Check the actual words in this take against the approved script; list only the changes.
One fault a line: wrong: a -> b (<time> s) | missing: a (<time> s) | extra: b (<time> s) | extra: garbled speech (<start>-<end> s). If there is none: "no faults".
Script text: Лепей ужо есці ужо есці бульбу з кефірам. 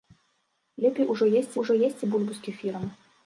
no faults